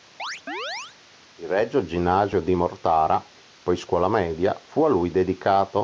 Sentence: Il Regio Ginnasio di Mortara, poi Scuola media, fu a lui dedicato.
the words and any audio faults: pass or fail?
fail